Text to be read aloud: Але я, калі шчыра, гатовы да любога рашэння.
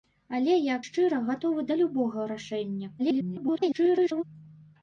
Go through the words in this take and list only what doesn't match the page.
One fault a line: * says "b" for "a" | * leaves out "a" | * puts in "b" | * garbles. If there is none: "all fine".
* leaves out "калі"
* garbles